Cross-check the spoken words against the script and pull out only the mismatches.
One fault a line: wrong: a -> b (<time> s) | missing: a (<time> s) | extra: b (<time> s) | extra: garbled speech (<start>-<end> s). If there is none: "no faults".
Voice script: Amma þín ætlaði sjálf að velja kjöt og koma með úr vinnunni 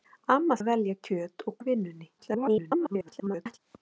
missing: þín ætlaði sjálf (0.6 s)
missing: koma með (1.6 s)
extra: garbled speech (2.2-3.6 s)